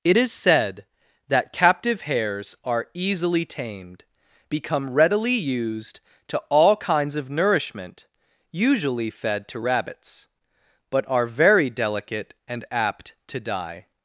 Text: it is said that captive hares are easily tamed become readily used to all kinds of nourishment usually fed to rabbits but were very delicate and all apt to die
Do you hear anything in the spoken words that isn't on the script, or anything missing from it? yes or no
yes